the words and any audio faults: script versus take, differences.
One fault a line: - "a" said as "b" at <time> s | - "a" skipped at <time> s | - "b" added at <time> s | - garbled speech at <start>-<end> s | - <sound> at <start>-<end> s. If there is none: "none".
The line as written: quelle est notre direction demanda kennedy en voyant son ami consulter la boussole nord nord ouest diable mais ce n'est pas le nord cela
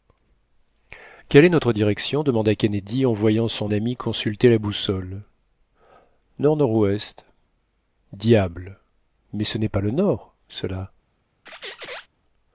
- squeak at 11.5-12.1 s